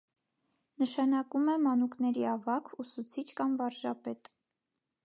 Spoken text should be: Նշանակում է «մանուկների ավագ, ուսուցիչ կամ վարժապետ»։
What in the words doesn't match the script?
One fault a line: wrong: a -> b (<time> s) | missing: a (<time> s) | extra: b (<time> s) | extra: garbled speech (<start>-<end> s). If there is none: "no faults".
no faults